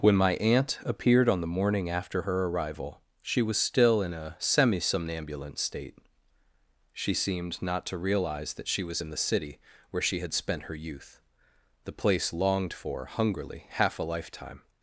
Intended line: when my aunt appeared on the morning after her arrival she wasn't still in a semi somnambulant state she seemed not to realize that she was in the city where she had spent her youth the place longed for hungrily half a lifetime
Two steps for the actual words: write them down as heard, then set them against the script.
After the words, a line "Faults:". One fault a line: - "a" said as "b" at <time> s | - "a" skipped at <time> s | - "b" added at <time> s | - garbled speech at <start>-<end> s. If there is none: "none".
when my aunt appeared on the morning after her arrival she was still in a semi somnambulant state she seemed not to realize that she was in the city where she had spent her youth the place longed for hungrily half a lifetime
Faults:
- "wasn't" said as "was" at 3.4 s